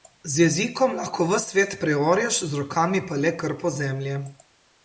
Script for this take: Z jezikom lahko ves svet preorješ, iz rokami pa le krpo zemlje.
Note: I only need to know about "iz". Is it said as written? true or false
false